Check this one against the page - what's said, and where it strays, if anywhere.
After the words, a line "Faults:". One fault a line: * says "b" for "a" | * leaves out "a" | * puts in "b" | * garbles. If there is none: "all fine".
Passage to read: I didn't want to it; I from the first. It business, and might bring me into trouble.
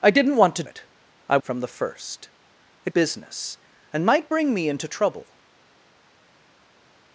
I didn't want to it; I from the first. It business, and might bring me into trouble.
Faults:
all fine